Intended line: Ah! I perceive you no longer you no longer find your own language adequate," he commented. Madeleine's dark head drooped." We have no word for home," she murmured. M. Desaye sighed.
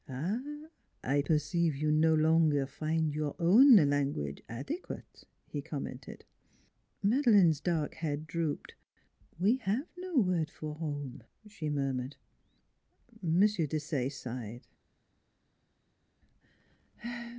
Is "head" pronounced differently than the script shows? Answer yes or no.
no